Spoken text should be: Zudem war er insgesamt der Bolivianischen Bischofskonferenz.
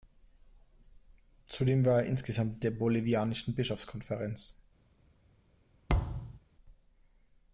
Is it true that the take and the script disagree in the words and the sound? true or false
true